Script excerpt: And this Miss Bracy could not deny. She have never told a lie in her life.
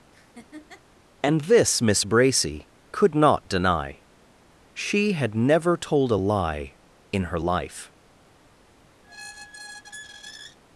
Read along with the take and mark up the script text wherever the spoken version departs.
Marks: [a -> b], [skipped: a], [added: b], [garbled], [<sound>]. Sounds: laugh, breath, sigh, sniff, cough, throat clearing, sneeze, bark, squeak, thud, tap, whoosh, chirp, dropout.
[laugh] And this Miss Bracy could not deny. She [have -> had] never told a lie in her life. [squeak]